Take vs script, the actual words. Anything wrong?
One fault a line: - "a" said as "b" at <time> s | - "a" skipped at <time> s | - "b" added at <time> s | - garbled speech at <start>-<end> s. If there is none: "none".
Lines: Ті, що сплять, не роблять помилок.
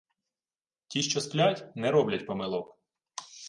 none